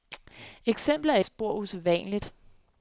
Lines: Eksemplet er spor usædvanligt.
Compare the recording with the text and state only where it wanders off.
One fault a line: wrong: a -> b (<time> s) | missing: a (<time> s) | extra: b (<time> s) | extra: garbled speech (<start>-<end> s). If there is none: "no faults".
no faults